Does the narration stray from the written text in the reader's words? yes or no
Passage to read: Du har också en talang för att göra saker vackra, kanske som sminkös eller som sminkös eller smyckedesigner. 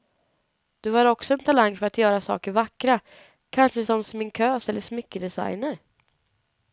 yes